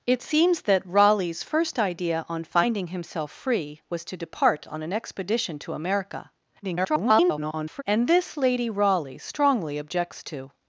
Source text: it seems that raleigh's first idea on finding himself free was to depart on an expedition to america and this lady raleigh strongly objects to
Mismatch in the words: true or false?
true